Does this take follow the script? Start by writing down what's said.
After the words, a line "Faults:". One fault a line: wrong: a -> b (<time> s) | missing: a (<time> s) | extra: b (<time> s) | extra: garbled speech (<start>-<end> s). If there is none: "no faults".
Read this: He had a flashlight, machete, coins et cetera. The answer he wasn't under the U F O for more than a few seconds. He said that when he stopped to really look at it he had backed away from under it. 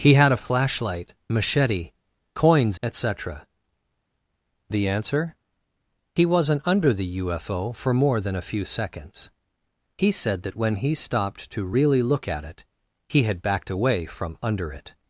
He had a flashlight, machete, coins et cetera. The answer he wasn't under the U F O for more than a few seconds. He said that when he stopped to really look at it he had backed away from under it.
Faults:
no faults